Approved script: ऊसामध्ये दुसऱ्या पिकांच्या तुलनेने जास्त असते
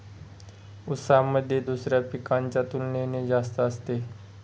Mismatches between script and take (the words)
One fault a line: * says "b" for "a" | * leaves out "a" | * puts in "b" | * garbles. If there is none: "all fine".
all fine